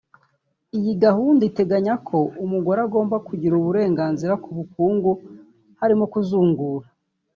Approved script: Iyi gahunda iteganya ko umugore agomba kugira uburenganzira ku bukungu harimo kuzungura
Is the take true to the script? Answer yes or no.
yes